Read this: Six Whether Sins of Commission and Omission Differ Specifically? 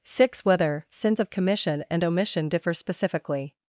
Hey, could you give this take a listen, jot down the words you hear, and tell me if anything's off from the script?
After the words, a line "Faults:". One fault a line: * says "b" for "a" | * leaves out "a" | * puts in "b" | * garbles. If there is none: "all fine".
Six Whether Sins of Commission and Omission Differ Specifically?
Faults:
all fine